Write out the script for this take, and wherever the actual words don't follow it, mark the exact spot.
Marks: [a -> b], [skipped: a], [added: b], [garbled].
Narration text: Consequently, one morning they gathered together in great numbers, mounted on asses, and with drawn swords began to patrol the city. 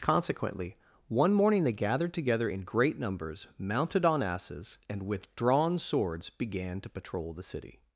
Consequently, one morning they gathered together in great numbers, mounted on asses, and with drawn swords began to patrol the city.